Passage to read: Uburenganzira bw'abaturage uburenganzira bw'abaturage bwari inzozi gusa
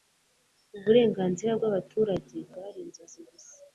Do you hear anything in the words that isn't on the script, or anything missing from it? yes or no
yes